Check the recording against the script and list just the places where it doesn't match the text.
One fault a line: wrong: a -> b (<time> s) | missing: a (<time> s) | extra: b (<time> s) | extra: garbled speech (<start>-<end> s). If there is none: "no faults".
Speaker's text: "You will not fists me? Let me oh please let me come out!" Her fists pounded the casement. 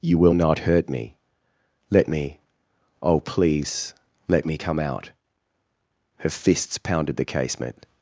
wrong: fists -> hurt (0.6 s)